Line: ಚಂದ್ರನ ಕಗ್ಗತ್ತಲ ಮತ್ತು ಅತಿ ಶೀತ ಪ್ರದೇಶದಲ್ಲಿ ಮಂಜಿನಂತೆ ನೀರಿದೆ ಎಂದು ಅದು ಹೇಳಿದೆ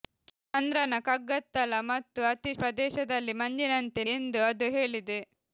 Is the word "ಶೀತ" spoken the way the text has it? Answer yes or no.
no